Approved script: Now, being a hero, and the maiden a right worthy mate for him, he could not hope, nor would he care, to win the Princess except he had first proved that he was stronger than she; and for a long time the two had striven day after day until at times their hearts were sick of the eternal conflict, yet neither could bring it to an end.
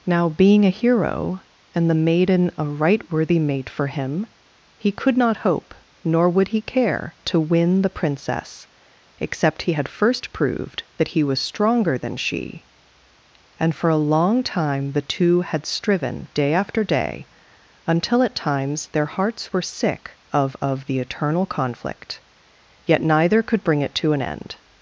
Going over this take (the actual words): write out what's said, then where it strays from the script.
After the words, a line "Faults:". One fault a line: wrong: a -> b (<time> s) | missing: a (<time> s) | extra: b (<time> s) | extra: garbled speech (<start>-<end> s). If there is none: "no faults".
Now, being a hero, and the maiden a right worthy mate for him, he could not hope, nor would he care, to win the Princess except he had first proved that he was stronger than she; and for a long time the two had striven day after day until at times their hearts were sick of of the eternal conflict, yet neither could bring it to an end.
Faults:
extra: of (20.6 s)